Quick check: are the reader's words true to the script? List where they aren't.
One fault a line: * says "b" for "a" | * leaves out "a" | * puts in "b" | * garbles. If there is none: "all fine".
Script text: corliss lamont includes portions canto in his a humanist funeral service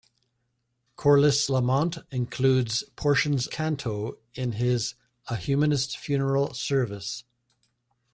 all fine